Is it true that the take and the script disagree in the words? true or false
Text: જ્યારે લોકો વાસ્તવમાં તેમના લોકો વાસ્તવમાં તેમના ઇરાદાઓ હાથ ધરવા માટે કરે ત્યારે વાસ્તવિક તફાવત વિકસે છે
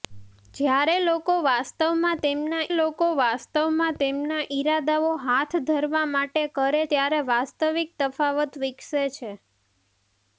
false